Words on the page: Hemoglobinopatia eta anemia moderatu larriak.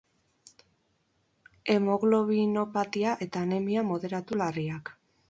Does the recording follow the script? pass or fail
pass